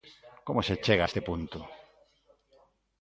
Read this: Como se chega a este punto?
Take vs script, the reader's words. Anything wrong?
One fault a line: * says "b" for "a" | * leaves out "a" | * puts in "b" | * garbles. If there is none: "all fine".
all fine